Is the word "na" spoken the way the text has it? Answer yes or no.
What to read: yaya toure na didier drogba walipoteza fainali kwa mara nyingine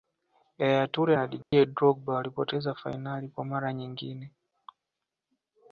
yes